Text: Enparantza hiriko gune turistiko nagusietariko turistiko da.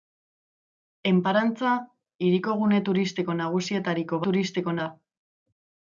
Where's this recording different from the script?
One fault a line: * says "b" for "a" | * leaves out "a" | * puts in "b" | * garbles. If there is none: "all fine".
all fine